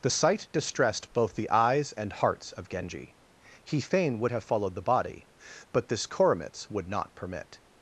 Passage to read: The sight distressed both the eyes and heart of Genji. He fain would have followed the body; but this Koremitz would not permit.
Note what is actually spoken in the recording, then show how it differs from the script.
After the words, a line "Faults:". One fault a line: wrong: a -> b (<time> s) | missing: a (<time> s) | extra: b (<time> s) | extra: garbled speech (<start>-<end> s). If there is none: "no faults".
The sight distressed both the eyes and hearts of Genji. He fain would have followed the body; but this Koremitz would not permit.
Faults:
wrong: heart -> hearts (2.1 s)